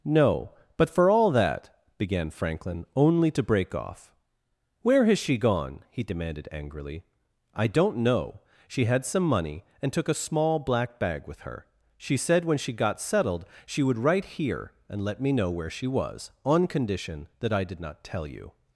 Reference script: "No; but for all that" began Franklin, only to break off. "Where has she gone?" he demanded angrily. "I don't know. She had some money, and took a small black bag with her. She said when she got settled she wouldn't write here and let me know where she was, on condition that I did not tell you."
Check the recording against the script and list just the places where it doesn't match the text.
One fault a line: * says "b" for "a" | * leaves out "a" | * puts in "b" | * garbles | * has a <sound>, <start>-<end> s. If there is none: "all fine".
* says "would" for "wouldn't"